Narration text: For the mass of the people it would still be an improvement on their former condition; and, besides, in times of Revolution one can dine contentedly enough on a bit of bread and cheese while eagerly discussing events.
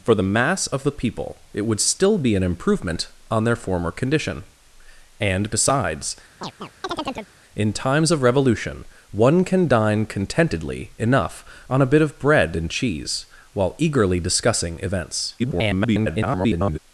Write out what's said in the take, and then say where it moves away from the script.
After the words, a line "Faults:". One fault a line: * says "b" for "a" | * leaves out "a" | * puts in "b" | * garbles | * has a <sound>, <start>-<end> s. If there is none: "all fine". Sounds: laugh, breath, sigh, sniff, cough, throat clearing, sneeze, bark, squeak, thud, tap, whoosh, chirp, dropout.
For the mass of the people it would still be an improvement on their former condition; and, besides, in times of Revolution one can dine contentedly enough on a bit of bread and cheese while eagerly discussing events. [garbled]
Faults:
* has a chirp, 6.4-7.3 s
* garbles